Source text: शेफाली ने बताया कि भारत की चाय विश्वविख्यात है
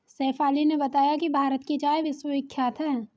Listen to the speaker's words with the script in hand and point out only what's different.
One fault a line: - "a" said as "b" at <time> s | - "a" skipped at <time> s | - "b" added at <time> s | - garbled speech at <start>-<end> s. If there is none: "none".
none